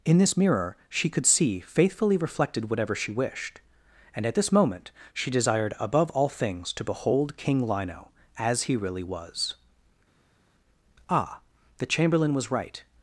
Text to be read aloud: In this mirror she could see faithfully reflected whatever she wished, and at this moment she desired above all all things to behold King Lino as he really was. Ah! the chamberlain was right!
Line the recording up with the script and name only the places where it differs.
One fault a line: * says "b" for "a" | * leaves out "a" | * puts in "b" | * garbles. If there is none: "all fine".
* leaves out "all"